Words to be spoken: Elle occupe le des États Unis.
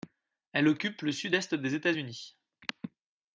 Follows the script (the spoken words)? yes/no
no